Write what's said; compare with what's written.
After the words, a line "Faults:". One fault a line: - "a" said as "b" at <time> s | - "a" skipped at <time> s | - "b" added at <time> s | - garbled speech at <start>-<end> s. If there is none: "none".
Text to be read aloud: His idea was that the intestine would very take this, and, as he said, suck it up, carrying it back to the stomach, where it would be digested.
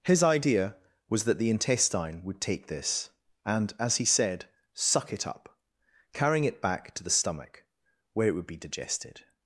His idea was that the intestine would take this, and, as he said, suck it up, carrying it back to the stomach, where it would be digested.
Faults:
- "very" skipped at 2.4 s